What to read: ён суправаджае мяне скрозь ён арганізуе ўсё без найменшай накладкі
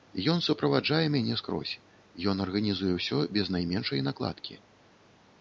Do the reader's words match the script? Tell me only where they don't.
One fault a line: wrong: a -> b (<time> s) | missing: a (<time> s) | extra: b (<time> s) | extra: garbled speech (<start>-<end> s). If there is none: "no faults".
no faults